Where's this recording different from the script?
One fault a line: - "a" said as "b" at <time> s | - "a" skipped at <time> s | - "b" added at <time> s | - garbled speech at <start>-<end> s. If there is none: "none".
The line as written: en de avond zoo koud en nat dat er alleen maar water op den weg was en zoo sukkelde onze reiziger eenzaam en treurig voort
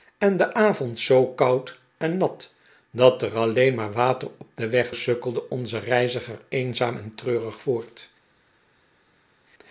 - "was en zoo" skipped at 4.9 s